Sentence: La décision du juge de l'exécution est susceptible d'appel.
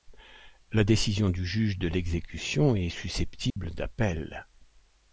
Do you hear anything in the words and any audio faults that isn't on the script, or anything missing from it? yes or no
yes